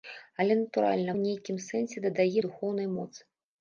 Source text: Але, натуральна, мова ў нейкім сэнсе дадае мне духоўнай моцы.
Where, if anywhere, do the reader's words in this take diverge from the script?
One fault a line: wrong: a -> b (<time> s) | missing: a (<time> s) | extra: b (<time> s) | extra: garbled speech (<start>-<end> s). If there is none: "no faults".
missing: мова (1.1 s)
missing: мне (2.4 s)